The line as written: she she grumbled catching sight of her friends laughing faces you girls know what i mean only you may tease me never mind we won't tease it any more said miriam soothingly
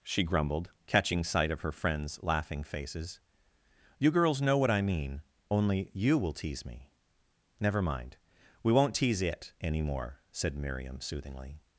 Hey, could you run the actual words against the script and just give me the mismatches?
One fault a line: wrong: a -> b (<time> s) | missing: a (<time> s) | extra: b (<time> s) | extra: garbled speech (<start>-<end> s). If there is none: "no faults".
missing: she (0.2 s)
wrong: may -> will (6.2 s)